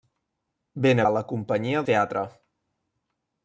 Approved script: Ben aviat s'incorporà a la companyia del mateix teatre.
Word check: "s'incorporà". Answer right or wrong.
wrong